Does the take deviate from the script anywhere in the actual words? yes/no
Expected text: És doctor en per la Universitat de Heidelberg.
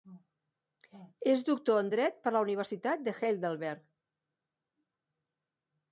yes